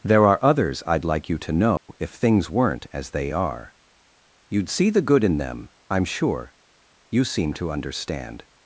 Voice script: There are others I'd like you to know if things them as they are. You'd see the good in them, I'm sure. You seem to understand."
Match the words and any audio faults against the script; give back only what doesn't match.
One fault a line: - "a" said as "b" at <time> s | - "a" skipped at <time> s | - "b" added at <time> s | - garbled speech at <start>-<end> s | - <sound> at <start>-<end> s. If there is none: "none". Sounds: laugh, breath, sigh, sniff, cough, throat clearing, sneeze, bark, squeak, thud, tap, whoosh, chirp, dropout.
- dropout at 1.8-1.9 s
- "them" said as "weren't" at 2.5 s